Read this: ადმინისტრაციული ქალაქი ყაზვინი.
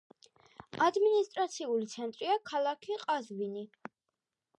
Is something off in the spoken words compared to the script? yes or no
yes